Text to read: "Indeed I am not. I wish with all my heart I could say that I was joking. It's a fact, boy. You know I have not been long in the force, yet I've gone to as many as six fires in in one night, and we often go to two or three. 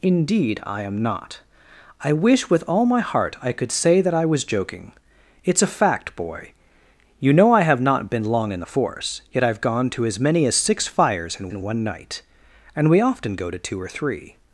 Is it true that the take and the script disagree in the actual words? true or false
false